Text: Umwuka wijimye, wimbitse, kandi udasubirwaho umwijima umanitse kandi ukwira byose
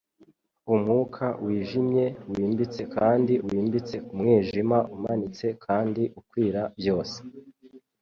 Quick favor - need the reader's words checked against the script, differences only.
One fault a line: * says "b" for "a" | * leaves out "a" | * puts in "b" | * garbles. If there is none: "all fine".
* says "wimbitse" for "udasubirwaho"